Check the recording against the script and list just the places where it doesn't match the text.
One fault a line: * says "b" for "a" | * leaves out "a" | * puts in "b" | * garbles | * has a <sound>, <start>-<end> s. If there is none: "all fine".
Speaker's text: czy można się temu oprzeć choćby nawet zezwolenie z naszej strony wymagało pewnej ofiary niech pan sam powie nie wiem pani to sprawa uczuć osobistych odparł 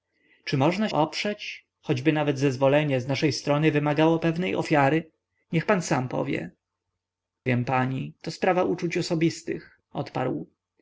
* leaves out "się temu"
* leaves out "nie"